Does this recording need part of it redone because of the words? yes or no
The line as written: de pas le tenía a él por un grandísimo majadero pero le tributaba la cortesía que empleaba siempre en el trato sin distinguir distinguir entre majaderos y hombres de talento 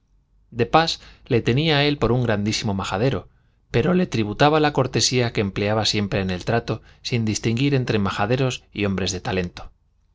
yes